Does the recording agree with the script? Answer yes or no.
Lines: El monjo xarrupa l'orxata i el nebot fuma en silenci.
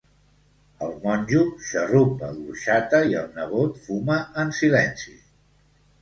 yes